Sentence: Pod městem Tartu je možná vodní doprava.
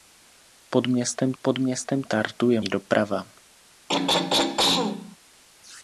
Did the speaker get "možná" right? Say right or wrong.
wrong